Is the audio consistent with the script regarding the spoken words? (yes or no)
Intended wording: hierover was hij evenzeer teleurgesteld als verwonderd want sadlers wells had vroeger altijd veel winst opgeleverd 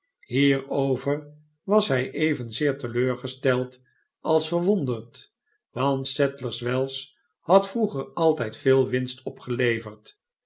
yes